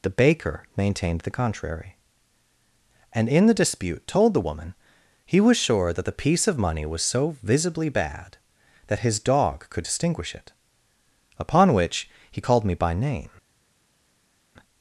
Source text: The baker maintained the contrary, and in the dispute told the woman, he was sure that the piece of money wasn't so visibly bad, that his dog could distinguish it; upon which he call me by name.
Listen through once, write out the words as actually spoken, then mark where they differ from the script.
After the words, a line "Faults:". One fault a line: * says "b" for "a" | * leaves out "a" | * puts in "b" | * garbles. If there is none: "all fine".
The baker maintained the contrary, and in the dispute told the woman, he was sure that the piece of money was so visibly bad, that his dog could distinguish it; upon which he called me by name.
Faults:
* says "was" for "wasn't"
* says "called" for "call"